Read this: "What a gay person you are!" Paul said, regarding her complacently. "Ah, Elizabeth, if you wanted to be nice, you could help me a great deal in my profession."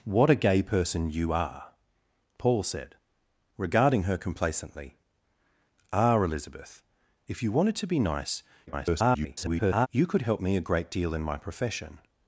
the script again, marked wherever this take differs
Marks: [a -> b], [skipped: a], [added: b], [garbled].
"What a gay person you are!" Paul said, regarding her complacently. "Ah, Elizabeth, if you wanted to be nice, [garbled] you could help me a great deal in my profession."